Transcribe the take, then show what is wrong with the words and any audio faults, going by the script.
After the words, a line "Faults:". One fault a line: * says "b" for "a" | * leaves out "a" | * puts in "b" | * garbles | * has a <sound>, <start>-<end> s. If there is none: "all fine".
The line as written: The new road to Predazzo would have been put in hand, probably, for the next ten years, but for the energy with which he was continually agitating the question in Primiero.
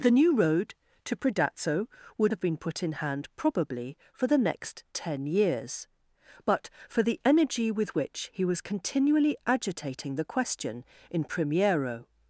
The new road to Predazzo would have been put in hand, probably, for the next ten years, but for the energy with which he was continually agitating the question in Primiero.
Faults:
all fine